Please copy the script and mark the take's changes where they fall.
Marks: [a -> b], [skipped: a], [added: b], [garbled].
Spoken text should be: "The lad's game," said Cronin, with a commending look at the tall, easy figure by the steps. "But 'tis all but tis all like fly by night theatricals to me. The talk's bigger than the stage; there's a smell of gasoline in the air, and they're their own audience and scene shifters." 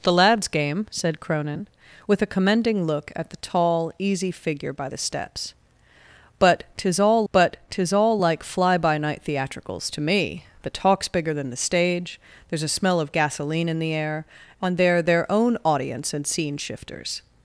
"The lad's game," said Cronin, with a commending look at the tall, easy figure by the steps. "But 'tis all but tis all like fly by night theatricals to me. The talk's bigger than the stage; there's a smell of gasoline in the air, and they're their own audience and scene shifters."